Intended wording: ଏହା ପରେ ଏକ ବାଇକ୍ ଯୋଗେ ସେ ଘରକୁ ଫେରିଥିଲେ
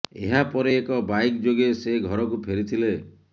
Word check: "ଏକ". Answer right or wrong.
right